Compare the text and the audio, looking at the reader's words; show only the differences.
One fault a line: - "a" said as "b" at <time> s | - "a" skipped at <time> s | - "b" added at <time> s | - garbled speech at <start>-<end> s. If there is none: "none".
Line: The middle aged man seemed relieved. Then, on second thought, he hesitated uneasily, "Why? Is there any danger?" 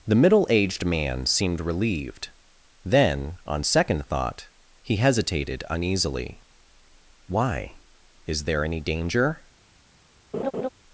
none